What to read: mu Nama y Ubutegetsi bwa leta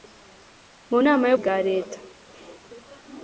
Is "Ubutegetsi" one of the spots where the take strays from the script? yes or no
yes